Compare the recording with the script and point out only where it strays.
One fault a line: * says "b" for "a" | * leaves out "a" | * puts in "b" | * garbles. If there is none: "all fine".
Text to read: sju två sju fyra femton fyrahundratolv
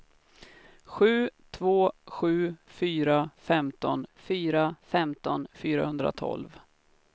* puts in "fyra femton"